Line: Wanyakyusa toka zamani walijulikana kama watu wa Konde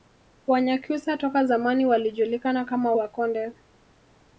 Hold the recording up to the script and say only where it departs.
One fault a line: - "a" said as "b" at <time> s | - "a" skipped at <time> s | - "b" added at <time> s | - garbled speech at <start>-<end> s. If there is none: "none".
- "watu" skipped at 2.9 s